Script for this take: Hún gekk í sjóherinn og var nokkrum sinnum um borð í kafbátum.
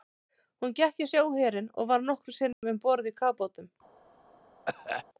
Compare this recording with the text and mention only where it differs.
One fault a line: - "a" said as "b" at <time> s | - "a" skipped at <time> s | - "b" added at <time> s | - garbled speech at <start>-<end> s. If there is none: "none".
none